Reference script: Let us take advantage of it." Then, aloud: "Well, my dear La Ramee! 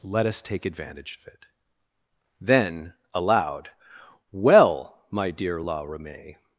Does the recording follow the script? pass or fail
pass